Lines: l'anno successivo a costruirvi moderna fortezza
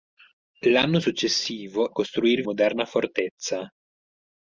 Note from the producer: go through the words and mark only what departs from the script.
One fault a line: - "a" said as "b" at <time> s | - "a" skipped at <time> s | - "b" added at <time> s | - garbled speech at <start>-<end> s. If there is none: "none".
none